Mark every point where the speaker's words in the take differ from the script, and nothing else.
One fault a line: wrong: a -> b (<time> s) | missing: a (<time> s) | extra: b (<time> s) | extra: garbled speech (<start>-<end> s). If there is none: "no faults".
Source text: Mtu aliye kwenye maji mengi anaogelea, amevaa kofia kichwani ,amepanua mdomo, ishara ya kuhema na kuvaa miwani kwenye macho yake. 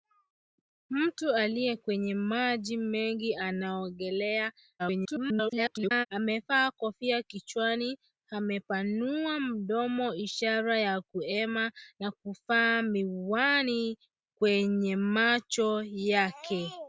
extra: garbled speech (4.8-6.1 s)